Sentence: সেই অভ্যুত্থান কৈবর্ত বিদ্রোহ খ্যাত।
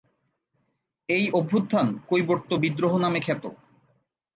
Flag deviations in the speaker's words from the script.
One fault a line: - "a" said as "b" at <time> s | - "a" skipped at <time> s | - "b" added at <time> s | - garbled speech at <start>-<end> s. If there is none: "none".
- "সেই" said as "এই" at 1.1 s
- "নামে" added at 3.0 s